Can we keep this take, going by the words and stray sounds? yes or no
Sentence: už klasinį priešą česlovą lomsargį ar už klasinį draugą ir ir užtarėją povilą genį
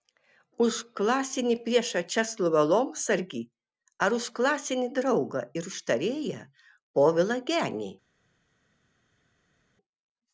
no